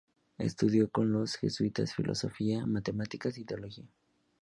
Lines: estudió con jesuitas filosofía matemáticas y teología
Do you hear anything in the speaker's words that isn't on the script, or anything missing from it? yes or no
yes